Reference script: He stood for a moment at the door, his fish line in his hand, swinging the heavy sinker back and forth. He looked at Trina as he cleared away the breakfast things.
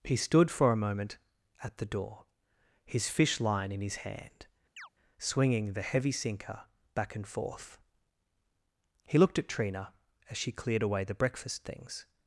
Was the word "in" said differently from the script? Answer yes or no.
no